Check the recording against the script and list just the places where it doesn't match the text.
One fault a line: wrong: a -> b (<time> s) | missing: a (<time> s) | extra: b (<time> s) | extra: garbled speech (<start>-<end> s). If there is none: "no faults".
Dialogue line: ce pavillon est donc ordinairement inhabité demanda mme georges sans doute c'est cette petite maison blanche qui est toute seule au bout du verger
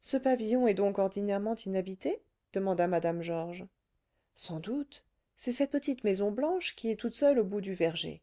no faults